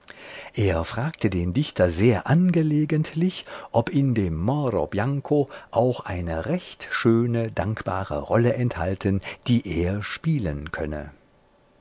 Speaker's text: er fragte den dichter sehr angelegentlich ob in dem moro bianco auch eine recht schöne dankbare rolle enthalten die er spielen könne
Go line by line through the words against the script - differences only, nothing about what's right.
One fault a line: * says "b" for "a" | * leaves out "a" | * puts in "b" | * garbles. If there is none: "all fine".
all fine